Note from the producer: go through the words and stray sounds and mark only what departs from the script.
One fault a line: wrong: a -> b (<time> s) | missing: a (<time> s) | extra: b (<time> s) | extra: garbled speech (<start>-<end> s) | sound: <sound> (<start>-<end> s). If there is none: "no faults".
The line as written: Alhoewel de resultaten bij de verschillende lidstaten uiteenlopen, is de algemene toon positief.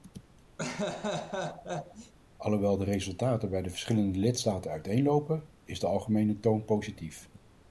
sound: laugh (0.6-2.1 s)